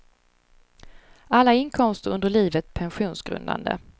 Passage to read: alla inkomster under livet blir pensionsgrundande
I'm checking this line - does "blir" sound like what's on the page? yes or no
no